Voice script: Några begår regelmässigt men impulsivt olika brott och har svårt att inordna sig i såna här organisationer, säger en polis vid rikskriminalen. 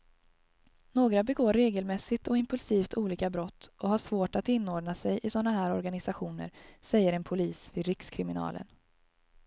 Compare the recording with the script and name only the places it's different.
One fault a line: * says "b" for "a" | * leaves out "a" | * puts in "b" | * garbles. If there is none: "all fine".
* says "och" for "men"